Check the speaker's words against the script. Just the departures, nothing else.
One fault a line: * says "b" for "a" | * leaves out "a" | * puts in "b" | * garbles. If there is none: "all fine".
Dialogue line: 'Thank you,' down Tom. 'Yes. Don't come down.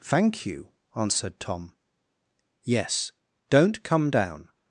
* says "answered" for "down"